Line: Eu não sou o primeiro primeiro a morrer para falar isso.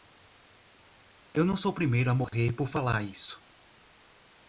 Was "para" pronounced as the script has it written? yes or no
no